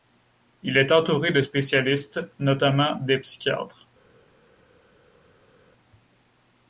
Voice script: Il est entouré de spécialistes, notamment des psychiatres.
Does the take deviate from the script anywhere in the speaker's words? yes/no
no